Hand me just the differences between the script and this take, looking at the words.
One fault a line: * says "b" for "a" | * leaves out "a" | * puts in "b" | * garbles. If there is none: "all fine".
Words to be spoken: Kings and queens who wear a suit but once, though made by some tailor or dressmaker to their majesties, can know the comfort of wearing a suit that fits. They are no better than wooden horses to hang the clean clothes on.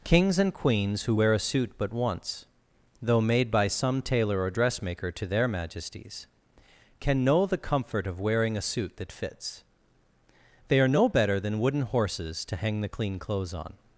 all fine